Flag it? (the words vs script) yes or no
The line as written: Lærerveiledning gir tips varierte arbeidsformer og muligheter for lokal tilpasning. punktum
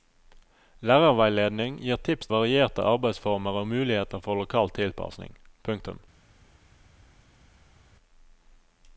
no